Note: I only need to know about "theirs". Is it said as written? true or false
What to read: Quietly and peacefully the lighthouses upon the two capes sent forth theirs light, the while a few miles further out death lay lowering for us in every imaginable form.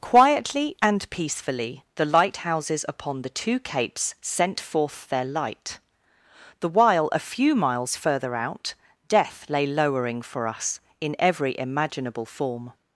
false